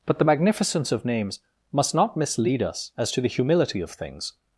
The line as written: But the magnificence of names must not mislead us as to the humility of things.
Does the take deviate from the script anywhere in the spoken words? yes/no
no